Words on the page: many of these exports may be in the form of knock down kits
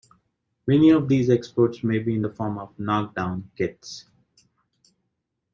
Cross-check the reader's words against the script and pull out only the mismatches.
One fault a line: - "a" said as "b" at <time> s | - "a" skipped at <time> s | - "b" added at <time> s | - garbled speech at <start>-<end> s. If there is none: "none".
none